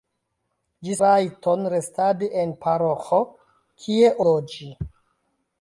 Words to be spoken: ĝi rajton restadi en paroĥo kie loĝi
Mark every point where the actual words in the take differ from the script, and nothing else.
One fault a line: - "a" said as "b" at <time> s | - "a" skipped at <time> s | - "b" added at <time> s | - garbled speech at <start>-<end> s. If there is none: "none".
none